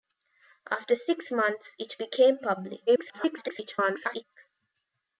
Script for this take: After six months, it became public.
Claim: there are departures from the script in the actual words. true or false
true